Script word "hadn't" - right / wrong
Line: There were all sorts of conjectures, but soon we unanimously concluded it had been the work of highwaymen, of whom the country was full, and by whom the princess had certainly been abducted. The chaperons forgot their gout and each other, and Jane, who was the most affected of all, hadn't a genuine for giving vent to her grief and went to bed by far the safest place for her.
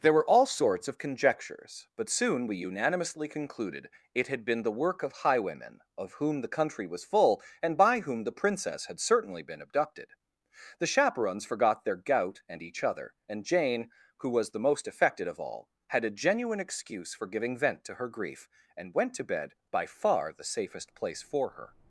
wrong